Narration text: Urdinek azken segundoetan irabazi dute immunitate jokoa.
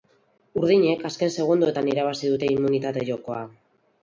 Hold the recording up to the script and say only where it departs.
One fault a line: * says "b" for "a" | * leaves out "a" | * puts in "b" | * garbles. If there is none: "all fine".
all fine